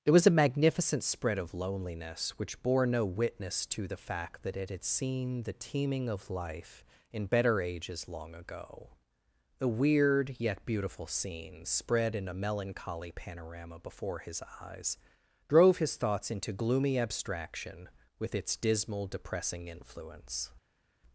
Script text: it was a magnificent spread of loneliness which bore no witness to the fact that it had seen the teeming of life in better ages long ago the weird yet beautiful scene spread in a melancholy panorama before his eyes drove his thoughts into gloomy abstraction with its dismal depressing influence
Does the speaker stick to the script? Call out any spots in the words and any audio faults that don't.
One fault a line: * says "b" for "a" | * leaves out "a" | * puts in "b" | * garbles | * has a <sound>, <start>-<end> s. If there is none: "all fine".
all fine